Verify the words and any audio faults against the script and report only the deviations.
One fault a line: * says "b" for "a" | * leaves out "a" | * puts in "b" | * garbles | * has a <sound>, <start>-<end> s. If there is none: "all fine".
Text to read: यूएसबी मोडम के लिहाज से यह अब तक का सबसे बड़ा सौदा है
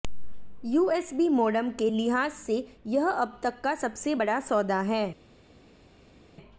all fine